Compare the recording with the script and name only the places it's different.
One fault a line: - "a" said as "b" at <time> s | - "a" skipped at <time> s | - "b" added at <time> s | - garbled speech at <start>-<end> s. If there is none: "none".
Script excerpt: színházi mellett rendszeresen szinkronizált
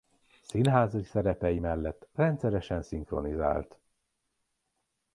- "szerepei" added at 1.0 s